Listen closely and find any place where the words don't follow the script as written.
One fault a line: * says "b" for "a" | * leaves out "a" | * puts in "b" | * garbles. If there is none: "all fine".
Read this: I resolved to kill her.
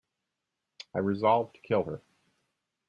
all fine